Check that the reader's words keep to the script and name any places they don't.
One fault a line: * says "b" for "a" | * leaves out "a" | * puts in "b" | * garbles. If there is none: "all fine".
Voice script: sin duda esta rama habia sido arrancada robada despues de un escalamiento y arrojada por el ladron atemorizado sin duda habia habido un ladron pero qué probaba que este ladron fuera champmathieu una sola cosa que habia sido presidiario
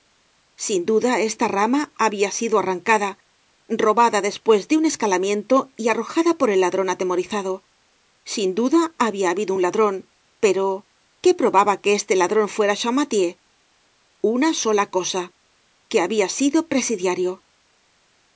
all fine